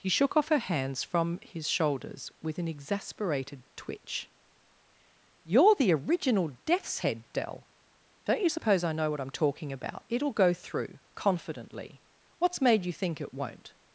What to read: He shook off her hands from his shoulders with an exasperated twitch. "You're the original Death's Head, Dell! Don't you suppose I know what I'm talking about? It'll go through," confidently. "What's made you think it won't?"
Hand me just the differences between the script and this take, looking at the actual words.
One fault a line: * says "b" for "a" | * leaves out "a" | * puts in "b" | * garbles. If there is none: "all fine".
all fine